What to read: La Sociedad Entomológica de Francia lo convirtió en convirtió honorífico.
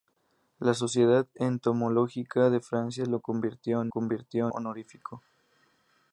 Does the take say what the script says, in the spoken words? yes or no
yes